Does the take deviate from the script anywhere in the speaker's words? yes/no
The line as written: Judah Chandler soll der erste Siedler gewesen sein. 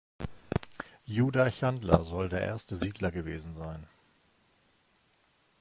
no